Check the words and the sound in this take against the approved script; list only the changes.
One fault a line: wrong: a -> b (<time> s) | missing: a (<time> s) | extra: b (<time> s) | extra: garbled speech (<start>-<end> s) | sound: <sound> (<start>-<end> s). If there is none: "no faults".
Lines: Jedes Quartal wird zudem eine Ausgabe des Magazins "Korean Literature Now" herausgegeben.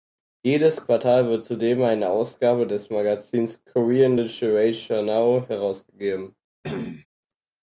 sound: cough (6.6-7.1 s)